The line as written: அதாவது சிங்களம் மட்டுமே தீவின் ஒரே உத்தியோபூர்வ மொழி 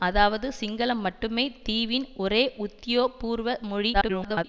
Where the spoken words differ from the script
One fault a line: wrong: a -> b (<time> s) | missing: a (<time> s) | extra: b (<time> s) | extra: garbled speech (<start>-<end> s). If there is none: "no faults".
extra: garbled speech (3.9-4.4 s)